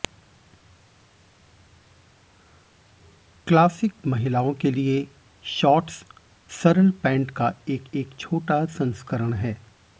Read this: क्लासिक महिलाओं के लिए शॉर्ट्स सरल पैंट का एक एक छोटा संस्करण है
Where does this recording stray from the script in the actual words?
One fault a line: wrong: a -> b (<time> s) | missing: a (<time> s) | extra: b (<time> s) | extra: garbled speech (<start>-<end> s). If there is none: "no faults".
no faults